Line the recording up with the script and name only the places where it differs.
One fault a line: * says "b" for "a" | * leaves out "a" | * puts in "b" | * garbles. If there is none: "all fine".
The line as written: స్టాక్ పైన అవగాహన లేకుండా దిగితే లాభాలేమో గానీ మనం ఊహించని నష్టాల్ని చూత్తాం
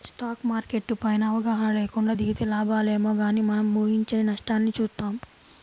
* puts in "మార్కెట్టు"